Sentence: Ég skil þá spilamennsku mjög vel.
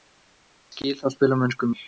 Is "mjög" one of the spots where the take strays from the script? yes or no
yes